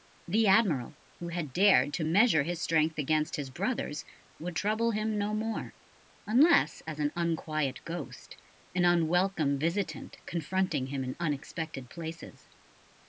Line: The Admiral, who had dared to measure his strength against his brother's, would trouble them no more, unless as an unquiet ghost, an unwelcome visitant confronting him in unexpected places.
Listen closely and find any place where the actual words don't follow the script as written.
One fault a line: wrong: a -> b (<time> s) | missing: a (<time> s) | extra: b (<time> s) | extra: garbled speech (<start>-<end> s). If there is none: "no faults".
wrong: them -> him (4.9 s)